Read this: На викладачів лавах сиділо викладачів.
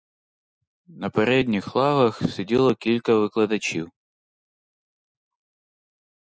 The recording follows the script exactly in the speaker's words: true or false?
false